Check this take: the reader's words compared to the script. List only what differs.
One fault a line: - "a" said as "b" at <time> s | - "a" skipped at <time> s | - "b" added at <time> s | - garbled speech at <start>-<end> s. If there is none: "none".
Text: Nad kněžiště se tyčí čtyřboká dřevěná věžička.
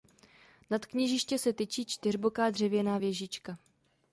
none